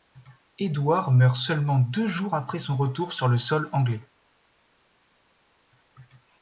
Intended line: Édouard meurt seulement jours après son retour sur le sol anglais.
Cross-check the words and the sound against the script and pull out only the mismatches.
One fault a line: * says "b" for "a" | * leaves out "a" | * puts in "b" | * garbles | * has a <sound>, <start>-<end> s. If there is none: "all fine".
* puts in "deux"